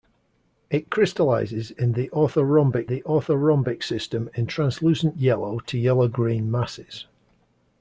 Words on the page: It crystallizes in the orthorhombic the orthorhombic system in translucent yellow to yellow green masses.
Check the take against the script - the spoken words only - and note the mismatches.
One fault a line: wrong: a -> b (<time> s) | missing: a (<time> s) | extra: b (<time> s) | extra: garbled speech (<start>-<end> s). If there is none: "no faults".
no faults